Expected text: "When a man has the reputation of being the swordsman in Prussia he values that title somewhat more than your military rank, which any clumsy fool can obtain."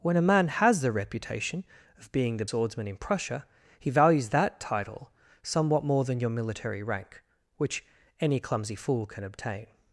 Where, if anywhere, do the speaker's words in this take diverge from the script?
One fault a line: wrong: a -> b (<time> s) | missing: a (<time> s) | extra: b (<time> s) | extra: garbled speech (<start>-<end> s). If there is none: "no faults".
no faults